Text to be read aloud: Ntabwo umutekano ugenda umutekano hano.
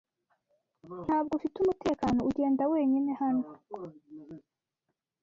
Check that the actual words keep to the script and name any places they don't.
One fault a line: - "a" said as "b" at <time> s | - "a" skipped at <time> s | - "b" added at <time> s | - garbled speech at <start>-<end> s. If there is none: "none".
- "ufite" added at 1.4 s
- "umutekano" said as "wenyine" at 2.7 s